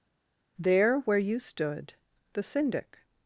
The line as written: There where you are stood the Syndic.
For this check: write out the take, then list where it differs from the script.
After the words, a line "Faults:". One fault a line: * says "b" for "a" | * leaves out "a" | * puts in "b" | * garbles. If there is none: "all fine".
There where you stood the Syndic.
Faults:
* leaves out "are"